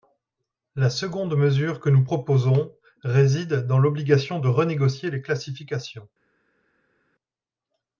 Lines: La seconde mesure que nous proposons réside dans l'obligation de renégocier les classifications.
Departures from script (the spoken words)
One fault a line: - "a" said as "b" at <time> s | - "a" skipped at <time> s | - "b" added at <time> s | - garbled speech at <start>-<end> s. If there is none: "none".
none